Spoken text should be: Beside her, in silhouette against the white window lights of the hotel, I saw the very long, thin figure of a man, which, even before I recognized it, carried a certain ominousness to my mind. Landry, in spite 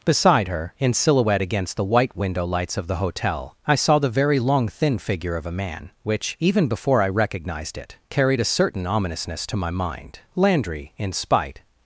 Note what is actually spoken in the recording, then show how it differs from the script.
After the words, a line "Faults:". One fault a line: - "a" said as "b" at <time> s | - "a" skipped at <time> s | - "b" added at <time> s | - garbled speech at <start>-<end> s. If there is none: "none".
Beside her, in silhouette against the white window lights of the hotel, I saw the very long, thin figure of a man, which, even before I recognized it, carried a certain ominousness to my mind. Landry, in spite
Faults:
none